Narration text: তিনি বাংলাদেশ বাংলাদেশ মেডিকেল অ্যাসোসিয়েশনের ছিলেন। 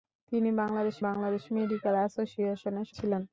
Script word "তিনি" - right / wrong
right